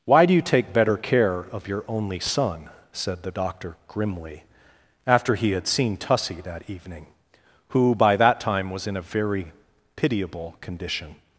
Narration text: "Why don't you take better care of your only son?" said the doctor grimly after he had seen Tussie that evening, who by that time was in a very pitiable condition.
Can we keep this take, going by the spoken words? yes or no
no